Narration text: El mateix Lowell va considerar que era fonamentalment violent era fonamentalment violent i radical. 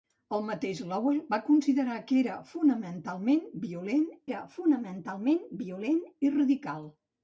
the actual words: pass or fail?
pass